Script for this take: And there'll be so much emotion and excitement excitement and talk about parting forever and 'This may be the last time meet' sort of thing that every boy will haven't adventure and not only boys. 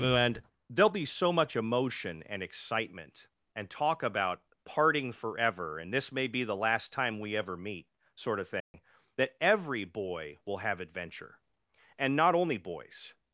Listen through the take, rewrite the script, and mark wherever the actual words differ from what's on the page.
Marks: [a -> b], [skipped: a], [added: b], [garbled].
And there'll be so much emotion and excitement [skipped: excitement] and talk about parting forever and 'This may be the last time [added: we ever] meet' sort of thing that every boy will [haven't -> have] adventure and not only boys.